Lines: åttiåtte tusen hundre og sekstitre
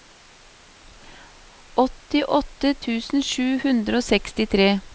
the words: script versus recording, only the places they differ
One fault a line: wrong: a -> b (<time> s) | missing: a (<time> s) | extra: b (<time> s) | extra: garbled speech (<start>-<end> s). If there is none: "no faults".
extra: sju (3.3 s)